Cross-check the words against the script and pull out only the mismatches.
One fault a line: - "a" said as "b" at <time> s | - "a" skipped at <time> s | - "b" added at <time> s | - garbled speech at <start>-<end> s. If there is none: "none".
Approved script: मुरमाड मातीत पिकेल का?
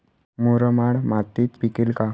none